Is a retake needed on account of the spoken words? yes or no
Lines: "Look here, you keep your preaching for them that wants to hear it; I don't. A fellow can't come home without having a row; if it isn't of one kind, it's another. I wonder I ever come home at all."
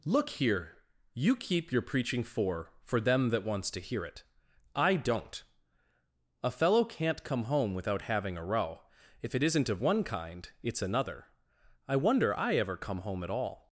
yes